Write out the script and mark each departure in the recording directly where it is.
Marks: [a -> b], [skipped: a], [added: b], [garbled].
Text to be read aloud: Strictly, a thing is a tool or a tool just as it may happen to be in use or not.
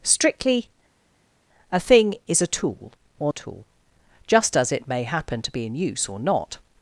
Strictly, a thing is a tool or a tool just as it may happen to be in use or not.